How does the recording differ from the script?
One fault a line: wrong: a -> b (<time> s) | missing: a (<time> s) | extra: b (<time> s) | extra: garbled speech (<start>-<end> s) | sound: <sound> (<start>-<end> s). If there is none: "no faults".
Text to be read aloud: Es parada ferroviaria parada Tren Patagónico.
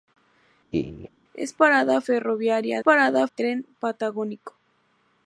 sound: laugh (0.7-1.1 s)